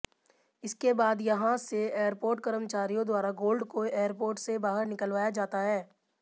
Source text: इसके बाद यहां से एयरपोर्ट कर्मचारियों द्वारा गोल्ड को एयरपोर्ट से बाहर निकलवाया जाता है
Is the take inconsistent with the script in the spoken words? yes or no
no